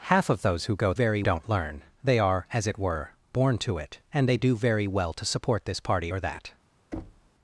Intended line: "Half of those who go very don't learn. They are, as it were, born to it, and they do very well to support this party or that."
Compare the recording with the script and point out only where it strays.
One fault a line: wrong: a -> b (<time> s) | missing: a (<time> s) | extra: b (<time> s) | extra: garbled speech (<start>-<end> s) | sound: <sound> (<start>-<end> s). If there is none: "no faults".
sound: thud (6.9-7.3 s)